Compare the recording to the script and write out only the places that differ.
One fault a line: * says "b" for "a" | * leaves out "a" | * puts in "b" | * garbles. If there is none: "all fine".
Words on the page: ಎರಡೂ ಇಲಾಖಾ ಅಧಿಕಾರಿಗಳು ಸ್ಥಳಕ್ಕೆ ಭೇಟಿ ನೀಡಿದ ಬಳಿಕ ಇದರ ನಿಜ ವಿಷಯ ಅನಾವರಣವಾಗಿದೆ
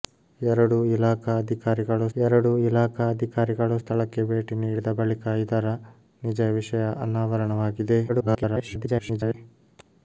* puts in "ಎರಡೂ ಇಲಾಖಾ ಅಧಿಕಾರಿಗಳು"
* garbles